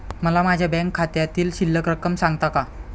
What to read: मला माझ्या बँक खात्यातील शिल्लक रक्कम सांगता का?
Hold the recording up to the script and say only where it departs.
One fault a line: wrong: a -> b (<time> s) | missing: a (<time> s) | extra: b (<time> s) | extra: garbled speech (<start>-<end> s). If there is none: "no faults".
no faults